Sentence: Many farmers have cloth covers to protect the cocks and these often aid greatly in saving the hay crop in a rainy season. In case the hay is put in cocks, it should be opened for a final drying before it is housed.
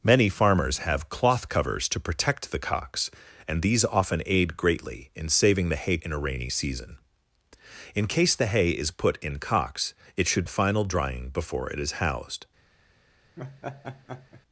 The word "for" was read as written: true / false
false